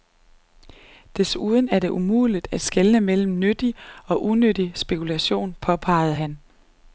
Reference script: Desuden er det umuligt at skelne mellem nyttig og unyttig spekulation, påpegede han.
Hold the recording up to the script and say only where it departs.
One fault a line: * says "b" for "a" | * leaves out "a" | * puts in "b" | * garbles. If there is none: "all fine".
all fine